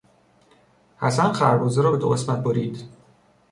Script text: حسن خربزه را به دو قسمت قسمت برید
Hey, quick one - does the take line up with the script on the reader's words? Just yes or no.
no